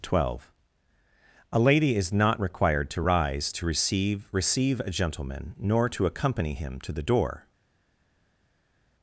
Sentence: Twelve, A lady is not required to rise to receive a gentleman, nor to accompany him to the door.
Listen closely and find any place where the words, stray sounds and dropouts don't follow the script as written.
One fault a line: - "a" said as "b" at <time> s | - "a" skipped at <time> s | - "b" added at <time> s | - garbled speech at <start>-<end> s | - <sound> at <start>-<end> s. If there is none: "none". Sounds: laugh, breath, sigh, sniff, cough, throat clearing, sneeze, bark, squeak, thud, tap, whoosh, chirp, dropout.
- "receive" added at 4.3 s